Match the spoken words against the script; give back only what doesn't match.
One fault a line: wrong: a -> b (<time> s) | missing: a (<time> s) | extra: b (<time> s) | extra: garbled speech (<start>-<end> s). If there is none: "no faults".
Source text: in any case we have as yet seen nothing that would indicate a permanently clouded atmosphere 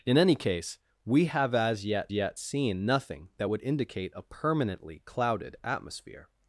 extra: yet (2.1 s)